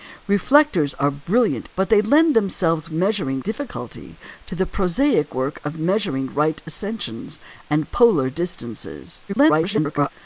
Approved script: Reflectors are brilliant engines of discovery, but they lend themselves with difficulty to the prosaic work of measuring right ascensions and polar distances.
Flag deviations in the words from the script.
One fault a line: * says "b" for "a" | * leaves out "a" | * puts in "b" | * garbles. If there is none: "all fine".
* leaves out "engines of discovery"
* says "measuring" for "with"
* garbles